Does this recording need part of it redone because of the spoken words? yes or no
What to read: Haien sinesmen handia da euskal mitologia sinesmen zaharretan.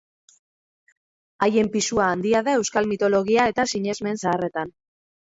yes